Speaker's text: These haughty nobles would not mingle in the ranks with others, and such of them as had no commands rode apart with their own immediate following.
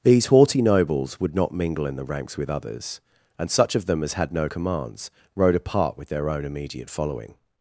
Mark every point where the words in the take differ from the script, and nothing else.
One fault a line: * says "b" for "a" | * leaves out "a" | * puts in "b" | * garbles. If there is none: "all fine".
all fine